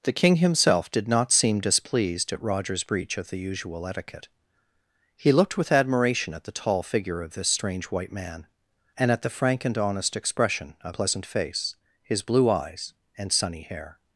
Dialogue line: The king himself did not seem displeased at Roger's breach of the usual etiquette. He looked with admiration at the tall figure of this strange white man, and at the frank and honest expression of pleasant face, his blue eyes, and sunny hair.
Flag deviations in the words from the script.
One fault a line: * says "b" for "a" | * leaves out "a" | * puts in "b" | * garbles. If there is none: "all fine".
all fine